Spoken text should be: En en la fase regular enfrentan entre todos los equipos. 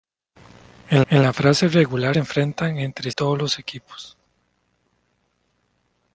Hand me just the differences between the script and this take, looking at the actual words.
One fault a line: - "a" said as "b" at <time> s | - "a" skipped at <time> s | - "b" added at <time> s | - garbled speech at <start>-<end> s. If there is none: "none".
none